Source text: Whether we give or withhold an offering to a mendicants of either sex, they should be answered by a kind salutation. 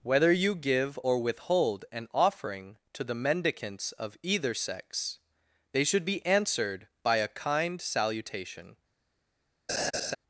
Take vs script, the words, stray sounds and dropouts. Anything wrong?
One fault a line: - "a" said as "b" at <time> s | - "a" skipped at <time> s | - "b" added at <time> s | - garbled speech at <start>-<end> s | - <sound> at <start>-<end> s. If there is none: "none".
- "we" said as "you" at 0.3 s
- "a" said as "the" at 3.0 s
- laugh at 9.7-10.2 s